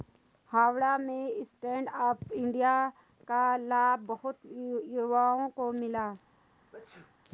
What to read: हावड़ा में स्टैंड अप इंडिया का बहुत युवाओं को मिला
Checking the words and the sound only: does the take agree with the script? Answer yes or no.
no